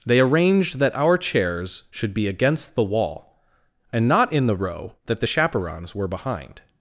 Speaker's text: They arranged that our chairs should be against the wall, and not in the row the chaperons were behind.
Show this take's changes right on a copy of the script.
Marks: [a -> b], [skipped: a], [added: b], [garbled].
They arranged that our chairs should be against the wall, and not in the row [added: that] the chaperons were behind.